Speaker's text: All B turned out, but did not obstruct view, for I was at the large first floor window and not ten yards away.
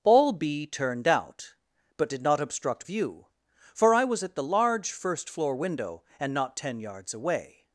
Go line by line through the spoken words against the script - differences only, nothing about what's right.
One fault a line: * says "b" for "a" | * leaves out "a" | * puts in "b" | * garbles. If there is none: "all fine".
all fine